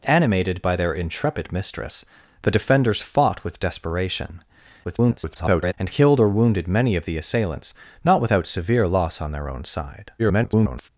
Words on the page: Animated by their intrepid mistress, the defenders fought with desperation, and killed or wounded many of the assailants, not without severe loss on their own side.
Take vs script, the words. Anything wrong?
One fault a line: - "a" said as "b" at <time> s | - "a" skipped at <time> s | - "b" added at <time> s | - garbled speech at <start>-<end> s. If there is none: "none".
- garbled speech at 4.8-5.7 s
- garbled speech at 10.2-10.9 s